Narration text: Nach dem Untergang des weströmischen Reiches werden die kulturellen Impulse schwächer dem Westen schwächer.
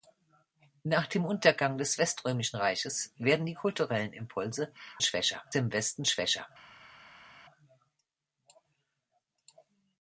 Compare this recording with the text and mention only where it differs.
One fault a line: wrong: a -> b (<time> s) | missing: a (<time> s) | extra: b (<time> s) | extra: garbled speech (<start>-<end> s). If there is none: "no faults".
no faults